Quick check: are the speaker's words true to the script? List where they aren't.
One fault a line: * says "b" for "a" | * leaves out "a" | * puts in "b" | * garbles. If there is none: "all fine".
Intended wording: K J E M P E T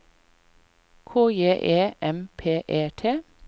all fine